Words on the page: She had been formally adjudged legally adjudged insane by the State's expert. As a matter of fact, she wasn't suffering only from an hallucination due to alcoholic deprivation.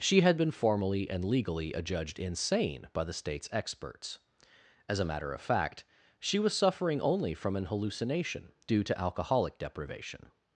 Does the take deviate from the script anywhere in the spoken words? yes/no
yes